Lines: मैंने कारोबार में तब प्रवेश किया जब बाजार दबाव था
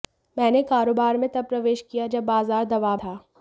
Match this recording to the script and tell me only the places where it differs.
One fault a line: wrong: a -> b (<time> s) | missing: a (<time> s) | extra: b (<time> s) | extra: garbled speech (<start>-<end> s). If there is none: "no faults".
no faults